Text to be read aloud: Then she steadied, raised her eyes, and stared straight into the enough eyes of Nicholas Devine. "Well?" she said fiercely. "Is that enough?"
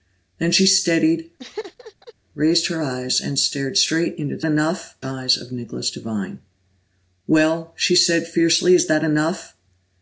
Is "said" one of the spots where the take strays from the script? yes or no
no